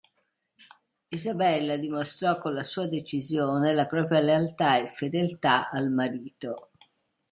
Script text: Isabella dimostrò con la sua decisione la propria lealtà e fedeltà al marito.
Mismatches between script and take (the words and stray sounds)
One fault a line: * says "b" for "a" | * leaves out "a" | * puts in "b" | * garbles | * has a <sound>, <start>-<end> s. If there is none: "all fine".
all fine